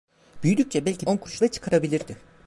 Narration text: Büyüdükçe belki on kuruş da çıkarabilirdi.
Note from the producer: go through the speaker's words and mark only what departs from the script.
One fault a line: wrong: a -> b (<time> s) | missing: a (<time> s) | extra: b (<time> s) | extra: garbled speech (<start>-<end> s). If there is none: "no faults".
no faults